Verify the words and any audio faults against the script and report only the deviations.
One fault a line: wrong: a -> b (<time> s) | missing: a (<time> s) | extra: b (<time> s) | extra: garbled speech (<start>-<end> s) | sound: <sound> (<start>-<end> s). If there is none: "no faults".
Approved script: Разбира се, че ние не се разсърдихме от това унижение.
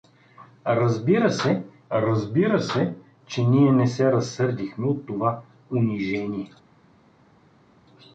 extra: разбира се (1.9 s)